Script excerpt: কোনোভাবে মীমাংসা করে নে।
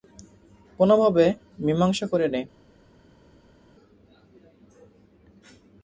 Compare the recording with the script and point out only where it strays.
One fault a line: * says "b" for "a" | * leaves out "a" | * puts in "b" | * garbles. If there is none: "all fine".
all fine